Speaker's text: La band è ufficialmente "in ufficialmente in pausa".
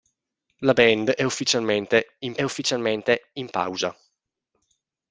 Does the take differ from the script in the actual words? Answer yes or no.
no